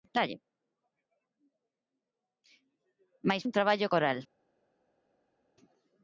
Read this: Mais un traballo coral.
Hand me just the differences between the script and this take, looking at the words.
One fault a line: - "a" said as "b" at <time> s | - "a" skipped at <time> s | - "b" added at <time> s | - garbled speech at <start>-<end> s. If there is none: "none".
none